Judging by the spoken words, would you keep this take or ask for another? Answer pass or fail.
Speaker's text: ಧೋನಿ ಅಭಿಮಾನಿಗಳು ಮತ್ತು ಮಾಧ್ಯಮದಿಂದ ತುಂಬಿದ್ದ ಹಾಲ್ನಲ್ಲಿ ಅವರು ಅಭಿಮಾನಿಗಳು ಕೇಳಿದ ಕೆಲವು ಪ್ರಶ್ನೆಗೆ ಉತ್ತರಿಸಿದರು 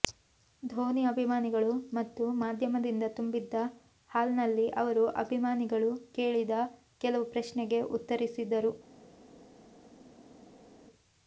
pass